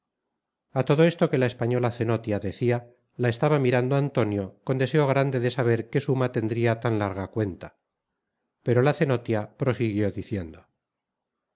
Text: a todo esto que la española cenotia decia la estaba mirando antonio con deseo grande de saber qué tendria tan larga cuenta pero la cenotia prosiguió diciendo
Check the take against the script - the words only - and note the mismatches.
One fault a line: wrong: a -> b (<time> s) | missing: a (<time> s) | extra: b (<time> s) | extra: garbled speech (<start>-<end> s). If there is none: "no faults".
extra: suma (6.0 s)